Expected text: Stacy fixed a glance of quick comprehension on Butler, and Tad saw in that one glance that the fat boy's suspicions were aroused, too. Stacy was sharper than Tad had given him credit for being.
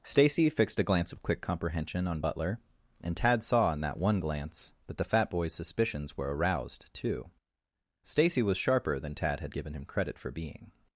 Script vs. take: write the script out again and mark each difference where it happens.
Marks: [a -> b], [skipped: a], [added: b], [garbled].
Stacy fixed a glance of quick comprehension on Butler, and Tad saw in that one glance that the fat boy's suspicions were aroused, too. Stacy was sharper than Tad had given him credit for being.